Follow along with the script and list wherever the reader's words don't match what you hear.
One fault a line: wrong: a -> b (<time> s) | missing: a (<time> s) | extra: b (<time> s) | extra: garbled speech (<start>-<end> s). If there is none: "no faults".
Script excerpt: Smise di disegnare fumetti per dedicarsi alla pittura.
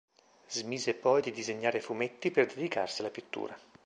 extra: poi (0.9 s)